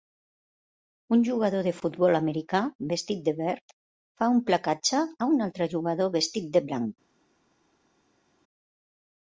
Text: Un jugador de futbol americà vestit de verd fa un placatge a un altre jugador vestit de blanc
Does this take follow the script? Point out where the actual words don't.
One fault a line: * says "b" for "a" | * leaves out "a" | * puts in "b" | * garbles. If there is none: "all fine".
all fine